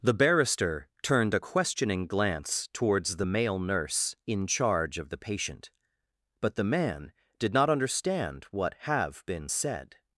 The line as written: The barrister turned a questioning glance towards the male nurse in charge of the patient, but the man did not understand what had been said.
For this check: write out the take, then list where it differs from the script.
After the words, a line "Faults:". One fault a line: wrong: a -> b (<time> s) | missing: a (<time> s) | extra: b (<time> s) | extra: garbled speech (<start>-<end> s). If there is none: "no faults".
The barrister turned a questioning glance towards the male nurse in charge of the patient, but the man did not understand what have been said.
Faults:
wrong: had -> have (8.8 s)